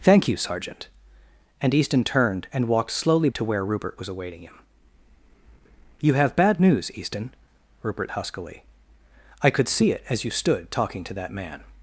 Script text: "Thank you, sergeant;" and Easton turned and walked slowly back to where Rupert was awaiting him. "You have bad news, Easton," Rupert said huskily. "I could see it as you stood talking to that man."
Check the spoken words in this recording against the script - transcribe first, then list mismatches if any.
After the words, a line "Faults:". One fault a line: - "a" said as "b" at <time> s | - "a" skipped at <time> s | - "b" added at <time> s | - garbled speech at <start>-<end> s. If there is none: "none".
"Thank you, sergeant;" and Easton turned and walked slowly to where Rupert was awaiting him. "You have bad news, Easton," Rupert huskily. "I could see it as you stood talking to that man."
Faults:
- "back" skipped at 3.3 s
- "said" skipped at 8.1 s